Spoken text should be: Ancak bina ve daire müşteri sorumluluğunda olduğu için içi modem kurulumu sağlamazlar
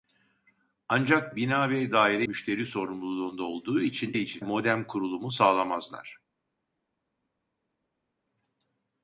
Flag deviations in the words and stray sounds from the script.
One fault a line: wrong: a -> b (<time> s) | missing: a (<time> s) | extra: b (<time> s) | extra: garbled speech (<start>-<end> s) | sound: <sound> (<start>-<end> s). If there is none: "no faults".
no faults